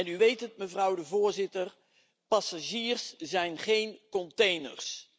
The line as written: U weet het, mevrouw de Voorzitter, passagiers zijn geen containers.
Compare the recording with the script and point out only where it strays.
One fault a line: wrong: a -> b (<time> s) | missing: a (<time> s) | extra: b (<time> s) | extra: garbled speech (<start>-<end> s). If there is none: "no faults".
no faults